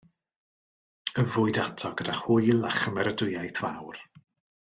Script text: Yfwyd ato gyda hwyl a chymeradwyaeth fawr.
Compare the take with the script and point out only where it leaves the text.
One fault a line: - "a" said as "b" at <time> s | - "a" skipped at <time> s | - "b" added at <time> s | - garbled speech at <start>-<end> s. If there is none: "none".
none